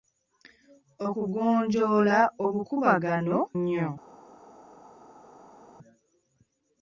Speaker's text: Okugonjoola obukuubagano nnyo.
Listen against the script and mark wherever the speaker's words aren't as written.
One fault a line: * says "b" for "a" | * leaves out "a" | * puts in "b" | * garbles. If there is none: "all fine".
all fine